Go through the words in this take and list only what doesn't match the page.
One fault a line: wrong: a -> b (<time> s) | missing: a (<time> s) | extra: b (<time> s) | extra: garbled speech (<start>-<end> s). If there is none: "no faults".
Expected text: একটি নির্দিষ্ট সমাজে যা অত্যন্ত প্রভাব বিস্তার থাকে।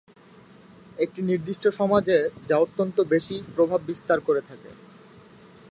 extra: বেশি (3.1 s)
extra: করে (4.2 s)